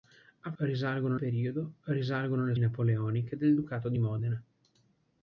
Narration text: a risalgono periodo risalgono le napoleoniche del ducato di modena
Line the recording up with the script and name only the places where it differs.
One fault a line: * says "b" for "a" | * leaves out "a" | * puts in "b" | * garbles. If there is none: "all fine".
all fine